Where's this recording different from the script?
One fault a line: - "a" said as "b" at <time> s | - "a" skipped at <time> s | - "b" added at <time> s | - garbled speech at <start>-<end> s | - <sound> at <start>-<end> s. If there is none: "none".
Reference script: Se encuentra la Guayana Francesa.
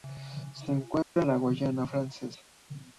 - dropout at 1.0-1.2 s